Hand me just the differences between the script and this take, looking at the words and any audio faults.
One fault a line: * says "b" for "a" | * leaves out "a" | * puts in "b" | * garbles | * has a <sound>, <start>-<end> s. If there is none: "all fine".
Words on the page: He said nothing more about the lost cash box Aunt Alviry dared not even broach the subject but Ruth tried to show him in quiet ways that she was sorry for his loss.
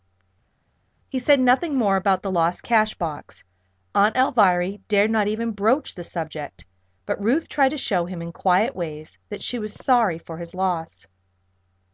all fine